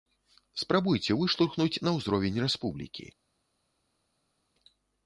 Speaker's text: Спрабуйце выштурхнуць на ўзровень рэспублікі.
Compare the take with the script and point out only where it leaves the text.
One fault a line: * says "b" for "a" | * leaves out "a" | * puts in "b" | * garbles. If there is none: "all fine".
all fine